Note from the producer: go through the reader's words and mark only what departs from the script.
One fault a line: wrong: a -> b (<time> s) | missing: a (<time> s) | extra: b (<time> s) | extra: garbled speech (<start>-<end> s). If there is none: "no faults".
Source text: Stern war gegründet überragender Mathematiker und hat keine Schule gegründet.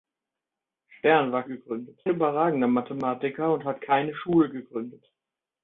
no faults